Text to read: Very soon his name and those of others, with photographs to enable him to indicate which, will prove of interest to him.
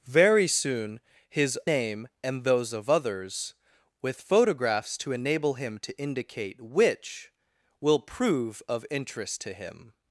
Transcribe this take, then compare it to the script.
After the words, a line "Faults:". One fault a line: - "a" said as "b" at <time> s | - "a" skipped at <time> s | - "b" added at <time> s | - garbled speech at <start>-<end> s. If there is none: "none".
Very soon his name and those of others, with photographs to enable him to indicate which, will prove of interest to him.
Faults:
none